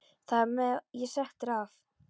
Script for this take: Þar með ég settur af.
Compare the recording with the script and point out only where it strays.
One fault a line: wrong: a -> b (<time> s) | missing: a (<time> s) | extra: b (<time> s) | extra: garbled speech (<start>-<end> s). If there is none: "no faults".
extra: var (0.7 s)